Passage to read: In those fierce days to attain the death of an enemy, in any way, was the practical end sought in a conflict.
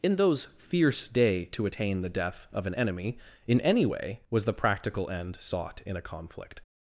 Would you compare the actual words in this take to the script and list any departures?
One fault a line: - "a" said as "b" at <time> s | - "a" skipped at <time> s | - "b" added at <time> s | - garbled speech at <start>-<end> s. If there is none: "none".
- "days" said as "day" at 1.1 s